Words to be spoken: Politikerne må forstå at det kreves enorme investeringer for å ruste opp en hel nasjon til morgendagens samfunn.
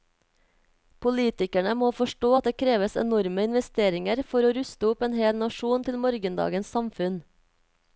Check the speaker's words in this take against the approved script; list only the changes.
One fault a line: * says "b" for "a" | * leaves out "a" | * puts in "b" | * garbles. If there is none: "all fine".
all fine